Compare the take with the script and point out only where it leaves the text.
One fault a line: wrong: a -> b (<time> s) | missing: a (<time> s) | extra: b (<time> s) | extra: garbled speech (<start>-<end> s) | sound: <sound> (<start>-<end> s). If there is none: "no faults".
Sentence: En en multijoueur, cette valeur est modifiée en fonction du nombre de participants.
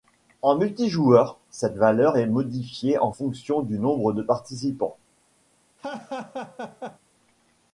missing: en (0.6 s)
sound: laugh (5.8-7.0 s)